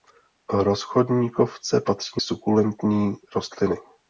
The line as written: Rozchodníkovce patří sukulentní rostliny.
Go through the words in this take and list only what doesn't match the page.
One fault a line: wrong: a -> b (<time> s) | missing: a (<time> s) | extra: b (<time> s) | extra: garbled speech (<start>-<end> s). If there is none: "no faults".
no faults